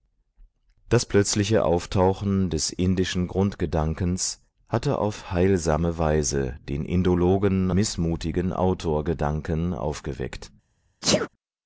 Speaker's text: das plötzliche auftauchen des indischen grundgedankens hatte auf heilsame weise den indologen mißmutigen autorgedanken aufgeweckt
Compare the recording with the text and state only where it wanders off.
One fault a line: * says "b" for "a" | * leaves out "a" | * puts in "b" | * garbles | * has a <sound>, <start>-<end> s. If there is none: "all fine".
* has a sneeze, 11.0-11.3 s